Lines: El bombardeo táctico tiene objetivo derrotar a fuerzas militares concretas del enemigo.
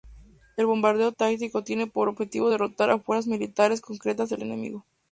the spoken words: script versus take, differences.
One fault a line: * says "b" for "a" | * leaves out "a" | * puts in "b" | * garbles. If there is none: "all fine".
* puts in "por"